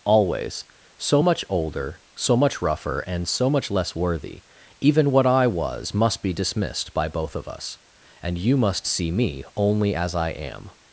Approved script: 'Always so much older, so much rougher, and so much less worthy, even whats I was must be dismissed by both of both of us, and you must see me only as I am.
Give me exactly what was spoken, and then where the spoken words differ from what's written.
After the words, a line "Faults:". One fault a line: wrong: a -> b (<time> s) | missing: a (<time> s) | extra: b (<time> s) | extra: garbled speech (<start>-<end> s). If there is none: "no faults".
'Always so much older, so much rougher, and so much less worthy, even what I was must be dismissed by both of us, and you must see me only as I am.
Faults:
wrong: whats -> what (5.1 s)
missing: both of (7.5 s)